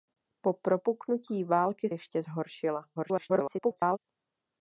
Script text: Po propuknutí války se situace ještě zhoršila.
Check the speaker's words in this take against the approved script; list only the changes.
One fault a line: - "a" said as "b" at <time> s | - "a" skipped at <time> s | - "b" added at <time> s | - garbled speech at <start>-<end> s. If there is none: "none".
- "se situace" skipped at 1.9 s
- garbled speech at 3.0-4.0 s